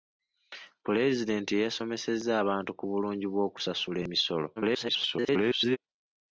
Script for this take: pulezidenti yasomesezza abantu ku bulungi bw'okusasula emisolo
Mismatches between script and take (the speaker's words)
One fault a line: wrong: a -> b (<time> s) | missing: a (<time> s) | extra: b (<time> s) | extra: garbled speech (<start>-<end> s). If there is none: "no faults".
extra: garbled speech (4.6-5.8 s)